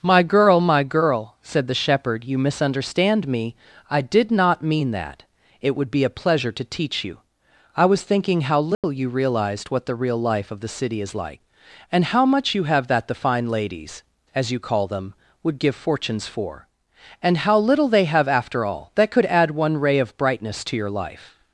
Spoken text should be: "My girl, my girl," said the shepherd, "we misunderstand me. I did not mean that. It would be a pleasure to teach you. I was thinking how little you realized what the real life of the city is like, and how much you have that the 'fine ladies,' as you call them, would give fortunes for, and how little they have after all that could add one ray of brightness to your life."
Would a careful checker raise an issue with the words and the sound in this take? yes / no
yes